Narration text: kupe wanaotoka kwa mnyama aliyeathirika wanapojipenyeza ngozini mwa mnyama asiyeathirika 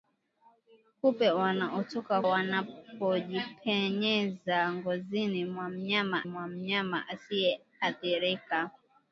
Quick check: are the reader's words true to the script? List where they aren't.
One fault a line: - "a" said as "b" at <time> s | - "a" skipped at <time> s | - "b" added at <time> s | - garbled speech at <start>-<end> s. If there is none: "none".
- "kwa mnyama aliyeathirika wanapojipenyeza ngozini" said as "wanapojipenyeza ngozini mwa mnyama" at 2.3 s